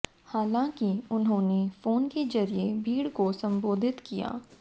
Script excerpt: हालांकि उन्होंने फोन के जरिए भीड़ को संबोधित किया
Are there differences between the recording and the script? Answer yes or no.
no